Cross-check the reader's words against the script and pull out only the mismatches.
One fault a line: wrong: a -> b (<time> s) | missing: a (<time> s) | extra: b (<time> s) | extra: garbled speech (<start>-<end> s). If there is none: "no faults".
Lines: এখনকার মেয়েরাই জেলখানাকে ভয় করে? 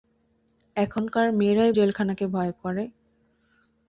no faults